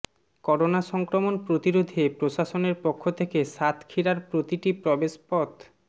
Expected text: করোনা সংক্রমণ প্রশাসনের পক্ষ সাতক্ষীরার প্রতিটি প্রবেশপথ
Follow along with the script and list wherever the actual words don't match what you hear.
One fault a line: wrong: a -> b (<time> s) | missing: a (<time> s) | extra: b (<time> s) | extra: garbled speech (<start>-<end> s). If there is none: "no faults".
extra: প্রতিরোধে (1.5 s)
extra: থেকে (3.2 s)